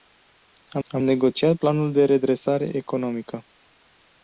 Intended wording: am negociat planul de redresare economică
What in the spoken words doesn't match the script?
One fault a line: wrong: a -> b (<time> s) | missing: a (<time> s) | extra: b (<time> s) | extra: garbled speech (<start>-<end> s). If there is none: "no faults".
extra: am (0.9 s)